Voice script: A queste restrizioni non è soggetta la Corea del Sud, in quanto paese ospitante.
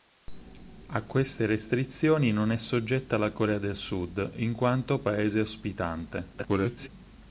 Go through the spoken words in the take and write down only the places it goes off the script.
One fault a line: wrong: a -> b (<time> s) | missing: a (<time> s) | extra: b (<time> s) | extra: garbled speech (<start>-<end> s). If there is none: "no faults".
extra: garbled speech (6.3-6.9 s)